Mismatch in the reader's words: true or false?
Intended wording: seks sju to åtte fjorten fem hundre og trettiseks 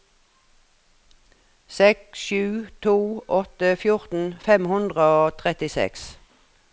false